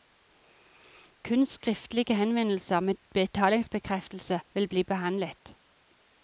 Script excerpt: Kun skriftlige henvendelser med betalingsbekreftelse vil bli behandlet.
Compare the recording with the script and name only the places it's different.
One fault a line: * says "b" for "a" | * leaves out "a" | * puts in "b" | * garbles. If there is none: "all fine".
all fine